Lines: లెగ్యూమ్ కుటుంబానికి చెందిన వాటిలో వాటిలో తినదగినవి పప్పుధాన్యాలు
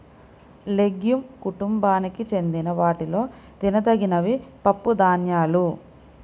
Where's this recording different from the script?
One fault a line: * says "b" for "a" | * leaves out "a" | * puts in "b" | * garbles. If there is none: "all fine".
* leaves out "వాటిలో"